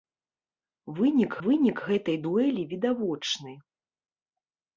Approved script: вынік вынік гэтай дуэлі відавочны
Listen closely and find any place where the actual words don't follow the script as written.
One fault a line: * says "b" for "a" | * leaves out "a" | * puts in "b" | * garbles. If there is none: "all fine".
all fine